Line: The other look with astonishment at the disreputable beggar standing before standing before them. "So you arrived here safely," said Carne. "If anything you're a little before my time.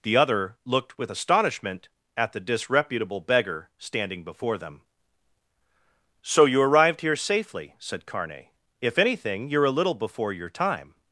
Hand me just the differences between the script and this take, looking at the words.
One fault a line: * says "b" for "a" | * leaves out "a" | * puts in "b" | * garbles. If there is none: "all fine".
* says "looked" for "look"
* leaves out "standing before"
* says "your" for "my"